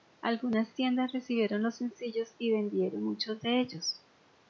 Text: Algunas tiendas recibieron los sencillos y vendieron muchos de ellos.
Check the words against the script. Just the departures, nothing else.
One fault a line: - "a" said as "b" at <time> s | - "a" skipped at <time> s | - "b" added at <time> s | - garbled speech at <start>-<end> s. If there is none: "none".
none